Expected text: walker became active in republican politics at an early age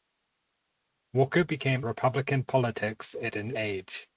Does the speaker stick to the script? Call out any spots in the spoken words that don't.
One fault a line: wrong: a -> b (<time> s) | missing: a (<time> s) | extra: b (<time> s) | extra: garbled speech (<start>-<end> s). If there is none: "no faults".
missing: active in (1.9 s)
missing: early (3.5 s)